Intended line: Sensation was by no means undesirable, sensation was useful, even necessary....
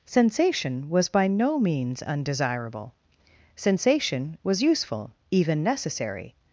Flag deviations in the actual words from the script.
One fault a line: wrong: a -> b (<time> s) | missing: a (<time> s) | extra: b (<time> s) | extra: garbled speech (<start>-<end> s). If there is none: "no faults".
no faults